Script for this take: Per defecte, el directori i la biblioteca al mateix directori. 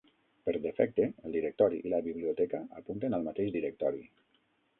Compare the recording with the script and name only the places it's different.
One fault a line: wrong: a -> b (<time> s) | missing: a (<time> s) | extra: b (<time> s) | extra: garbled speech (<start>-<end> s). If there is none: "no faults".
extra: apunten (2.8 s)